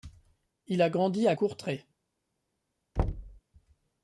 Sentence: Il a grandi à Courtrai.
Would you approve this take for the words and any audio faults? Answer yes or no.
no